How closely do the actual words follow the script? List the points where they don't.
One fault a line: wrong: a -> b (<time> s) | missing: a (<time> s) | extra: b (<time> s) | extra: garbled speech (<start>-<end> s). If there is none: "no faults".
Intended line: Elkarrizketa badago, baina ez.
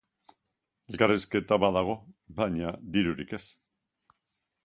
extra: dirurik (2.9 s)